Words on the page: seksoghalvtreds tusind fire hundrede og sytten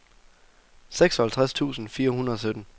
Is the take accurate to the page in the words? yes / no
yes